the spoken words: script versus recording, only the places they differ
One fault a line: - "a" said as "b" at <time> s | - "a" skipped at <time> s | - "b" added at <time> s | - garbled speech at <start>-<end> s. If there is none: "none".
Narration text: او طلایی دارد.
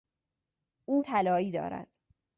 none